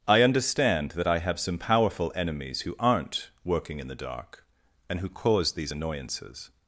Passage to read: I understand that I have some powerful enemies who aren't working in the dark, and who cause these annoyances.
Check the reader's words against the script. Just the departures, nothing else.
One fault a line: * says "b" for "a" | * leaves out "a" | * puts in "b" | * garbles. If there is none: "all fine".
all fine